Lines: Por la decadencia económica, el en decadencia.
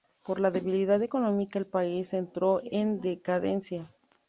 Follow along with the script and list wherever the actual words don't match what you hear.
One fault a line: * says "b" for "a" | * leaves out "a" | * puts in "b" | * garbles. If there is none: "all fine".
* says "debilidad" for "decadencia"
* puts in "país entró"